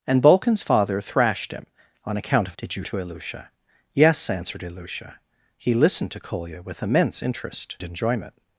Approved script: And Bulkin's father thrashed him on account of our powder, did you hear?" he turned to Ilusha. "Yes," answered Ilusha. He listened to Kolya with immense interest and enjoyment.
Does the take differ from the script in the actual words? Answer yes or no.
yes